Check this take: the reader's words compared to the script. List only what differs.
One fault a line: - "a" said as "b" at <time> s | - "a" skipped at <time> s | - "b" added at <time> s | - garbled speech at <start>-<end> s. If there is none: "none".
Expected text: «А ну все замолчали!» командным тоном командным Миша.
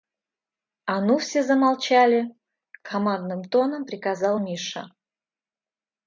- "командным" said as "приказал" at 3.9 s